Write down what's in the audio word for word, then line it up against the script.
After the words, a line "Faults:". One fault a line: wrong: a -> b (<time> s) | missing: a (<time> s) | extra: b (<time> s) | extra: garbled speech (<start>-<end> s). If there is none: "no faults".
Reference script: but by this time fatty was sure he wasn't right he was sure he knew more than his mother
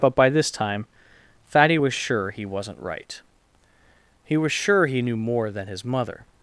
but by this time fatty was sure he wasn't right he was sure he knew more than his mother
Faults:
no faults